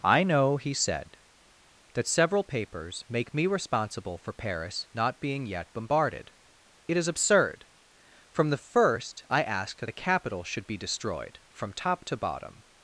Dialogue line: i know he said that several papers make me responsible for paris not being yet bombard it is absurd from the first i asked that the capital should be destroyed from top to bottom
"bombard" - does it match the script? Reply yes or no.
no